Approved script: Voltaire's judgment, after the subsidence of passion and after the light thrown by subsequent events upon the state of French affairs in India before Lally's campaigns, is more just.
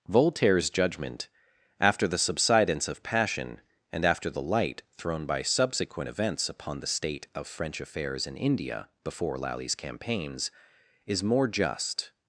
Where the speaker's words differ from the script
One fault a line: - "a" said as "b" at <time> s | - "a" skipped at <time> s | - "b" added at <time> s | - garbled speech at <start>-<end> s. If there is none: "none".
none